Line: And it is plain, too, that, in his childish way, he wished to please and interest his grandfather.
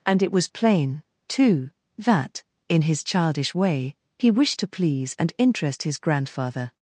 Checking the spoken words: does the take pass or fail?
fail